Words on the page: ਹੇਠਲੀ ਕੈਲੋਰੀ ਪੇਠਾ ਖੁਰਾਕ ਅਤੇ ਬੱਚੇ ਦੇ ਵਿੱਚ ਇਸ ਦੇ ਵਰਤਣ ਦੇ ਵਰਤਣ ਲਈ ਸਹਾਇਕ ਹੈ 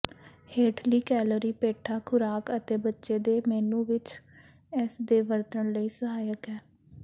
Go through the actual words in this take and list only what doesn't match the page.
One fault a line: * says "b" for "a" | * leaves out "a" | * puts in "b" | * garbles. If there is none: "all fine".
* puts in "ਮੇਨੂ"
* leaves out "ਦੇ ਵਰਤਣ"